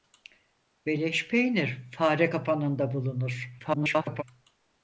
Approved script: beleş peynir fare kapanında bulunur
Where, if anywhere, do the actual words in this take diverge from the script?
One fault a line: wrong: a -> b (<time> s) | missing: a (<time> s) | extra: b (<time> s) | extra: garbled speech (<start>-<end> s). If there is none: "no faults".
extra: garbled speech (3.6-4.2 s)